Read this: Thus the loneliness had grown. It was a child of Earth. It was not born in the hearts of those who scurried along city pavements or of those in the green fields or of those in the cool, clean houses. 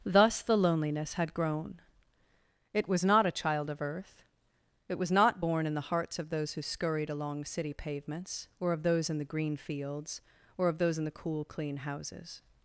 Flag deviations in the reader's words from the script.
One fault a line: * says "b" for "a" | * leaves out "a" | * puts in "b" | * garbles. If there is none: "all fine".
* puts in "not"